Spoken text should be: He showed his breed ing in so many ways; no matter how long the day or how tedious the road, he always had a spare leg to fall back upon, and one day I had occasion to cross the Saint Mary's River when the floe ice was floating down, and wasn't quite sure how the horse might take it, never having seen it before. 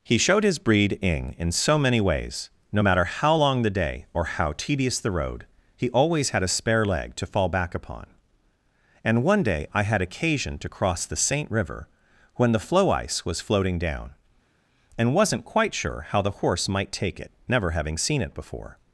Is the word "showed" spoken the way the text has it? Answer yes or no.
yes